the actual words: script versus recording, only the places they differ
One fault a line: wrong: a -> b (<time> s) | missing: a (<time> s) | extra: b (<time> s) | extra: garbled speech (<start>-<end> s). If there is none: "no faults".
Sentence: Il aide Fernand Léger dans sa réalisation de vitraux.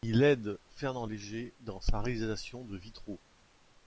no faults